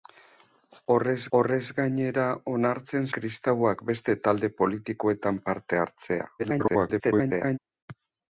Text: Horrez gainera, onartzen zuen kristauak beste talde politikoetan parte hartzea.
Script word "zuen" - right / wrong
wrong